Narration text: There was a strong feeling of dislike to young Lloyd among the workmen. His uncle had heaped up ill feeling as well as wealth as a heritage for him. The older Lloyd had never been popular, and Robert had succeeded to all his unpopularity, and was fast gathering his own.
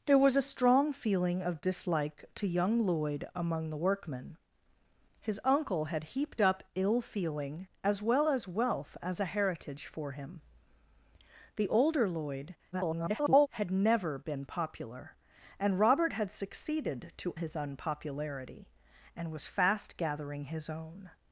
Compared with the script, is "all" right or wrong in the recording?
wrong